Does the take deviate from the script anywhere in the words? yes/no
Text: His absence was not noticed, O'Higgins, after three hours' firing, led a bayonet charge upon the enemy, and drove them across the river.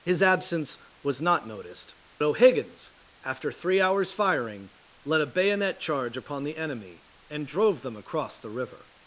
no